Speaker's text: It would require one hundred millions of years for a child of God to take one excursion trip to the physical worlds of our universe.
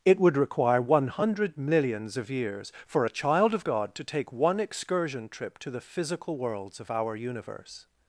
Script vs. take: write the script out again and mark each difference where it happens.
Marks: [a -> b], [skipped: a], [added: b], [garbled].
It would require one hundred millions of years for a child of God to take one excursion trip to the physical worlds of our universe.